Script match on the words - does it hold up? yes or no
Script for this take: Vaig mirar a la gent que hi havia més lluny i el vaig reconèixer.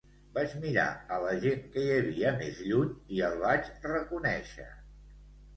yes